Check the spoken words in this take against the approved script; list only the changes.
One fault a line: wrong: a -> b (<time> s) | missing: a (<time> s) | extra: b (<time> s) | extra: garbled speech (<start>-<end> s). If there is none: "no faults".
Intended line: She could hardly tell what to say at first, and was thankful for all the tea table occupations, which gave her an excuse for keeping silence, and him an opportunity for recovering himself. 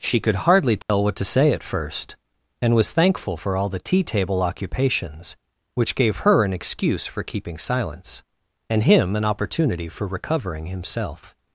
no faults